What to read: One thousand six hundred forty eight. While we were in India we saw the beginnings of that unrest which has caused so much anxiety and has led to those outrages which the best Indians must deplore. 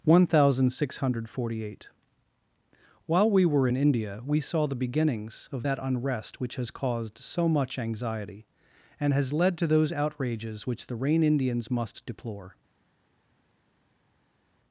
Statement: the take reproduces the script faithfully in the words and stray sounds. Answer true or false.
false